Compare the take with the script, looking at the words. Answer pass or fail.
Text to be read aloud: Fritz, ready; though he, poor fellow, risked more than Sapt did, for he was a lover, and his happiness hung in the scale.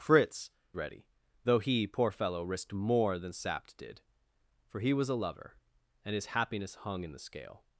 pass